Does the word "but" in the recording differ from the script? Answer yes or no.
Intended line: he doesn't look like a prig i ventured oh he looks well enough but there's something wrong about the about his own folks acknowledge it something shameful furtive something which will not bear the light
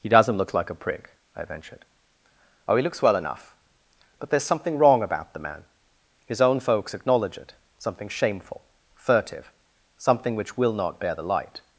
no